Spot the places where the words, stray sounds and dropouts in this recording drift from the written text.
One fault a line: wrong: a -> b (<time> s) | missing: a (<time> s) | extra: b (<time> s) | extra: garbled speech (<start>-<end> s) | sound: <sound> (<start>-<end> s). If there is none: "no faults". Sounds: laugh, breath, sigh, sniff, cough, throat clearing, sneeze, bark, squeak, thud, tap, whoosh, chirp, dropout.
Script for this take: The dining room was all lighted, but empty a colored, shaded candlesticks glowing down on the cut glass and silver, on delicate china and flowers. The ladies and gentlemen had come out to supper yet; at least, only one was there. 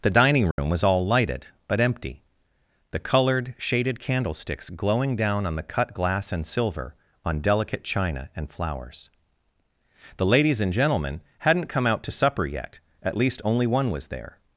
sound: dropout (0.5-0.6 s)
wrong: a -> the (2.9 s)
wrong: had -> hadn't (11.4 s)